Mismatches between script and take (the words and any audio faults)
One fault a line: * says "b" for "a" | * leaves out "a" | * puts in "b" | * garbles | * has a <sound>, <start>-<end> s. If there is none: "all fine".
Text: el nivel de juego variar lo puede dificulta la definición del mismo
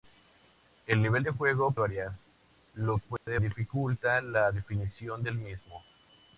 * has a dropout, 3.2-3.3 s